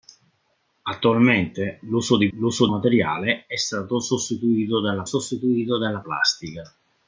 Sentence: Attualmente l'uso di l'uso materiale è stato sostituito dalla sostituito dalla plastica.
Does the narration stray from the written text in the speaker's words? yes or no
no